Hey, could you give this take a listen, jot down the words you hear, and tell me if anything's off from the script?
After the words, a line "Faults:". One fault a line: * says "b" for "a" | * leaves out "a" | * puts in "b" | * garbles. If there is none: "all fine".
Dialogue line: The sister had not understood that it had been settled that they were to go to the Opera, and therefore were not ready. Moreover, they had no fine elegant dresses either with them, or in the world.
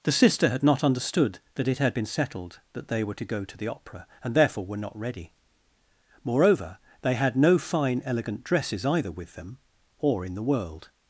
The sister had not understood that it had been settled that they were to go to the Opera, and therefore were not ready. Moreover, they had no fine elegant dresses either with them, or in the world.
Faults:
all fine